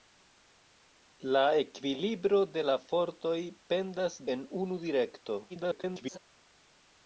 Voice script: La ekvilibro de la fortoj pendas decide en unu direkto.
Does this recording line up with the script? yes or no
no